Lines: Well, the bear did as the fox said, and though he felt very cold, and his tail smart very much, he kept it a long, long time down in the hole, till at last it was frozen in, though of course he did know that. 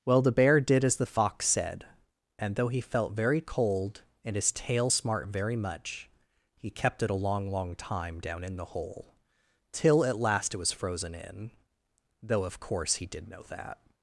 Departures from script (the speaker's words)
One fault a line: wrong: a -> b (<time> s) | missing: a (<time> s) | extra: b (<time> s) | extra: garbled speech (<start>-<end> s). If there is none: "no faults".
no faults